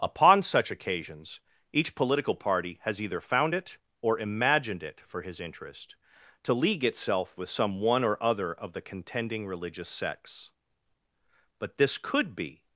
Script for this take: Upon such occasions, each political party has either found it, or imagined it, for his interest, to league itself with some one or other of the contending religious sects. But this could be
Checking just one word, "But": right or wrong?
right